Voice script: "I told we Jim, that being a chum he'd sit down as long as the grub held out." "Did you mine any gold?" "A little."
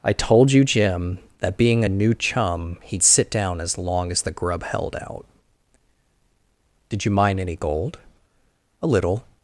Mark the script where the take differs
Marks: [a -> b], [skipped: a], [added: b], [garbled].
"I told [we -> you] Jim, that being a [added: new] chum he'd sit down as long as the grub held out." "Did you mine any gold?" "A little."